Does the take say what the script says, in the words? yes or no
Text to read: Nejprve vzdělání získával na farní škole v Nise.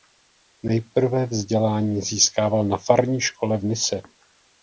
yes